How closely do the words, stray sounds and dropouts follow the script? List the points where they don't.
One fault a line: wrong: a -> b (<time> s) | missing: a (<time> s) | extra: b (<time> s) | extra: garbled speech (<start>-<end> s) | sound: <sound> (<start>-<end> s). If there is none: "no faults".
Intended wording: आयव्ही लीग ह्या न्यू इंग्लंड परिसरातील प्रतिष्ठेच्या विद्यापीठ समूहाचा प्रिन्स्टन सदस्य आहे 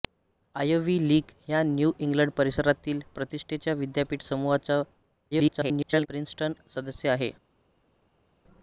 extra: garbled speech (5.3-6.1 s)